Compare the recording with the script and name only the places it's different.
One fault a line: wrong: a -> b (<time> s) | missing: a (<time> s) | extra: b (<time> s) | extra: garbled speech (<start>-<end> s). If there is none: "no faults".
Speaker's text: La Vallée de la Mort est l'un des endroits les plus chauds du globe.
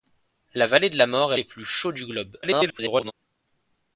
missing: l'un des endroits (1.4 s)
extra: garbled speech (2.4-3.1 s)